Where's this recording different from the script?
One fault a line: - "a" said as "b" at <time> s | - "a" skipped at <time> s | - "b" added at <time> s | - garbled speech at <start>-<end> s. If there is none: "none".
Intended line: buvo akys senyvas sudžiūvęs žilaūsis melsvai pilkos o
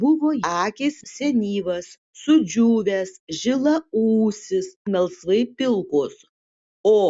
none